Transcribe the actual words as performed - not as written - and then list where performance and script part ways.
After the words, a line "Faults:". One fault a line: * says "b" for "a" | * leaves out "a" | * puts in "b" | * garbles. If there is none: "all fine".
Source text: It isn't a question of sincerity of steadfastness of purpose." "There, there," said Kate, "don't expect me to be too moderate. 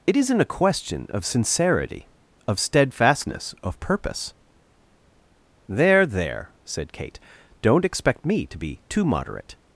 It isn't a question of sincerity of steadfastness of purpose." "There, there," said Kate, "don't expect me to be too moderate.
Faults:
all fine